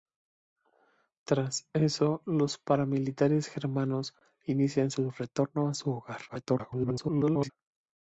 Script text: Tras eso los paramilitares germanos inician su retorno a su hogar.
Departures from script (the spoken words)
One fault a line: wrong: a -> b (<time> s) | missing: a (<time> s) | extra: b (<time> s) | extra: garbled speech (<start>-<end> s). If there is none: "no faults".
extra: garbled speech (6.3-7.5 s)